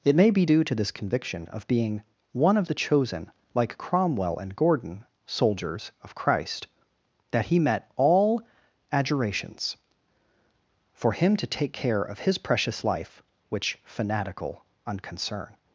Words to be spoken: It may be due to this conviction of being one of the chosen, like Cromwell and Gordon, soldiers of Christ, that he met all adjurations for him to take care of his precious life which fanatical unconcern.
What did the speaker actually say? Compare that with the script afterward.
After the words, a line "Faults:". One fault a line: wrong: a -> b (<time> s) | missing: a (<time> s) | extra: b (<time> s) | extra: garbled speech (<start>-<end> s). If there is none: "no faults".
It may be due to this conviction of being one of the chosen, like Cromwell and Gordon, soldiers of Christ, that he met all adjurations for him to take care of his precious life which fanatical unconcern.
Faults:
no faults